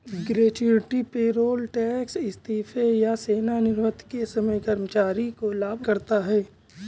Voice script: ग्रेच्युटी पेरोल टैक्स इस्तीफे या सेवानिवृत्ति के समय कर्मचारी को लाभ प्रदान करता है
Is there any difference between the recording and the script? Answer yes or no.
yes